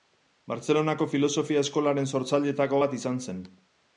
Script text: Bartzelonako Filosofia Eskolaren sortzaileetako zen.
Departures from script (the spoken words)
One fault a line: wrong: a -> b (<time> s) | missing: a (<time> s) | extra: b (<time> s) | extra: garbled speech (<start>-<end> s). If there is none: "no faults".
extra: bat izan (2.8 s)